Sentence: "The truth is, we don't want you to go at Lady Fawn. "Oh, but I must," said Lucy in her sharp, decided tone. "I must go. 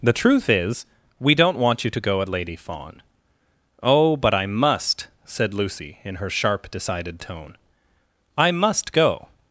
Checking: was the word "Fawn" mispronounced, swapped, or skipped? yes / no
no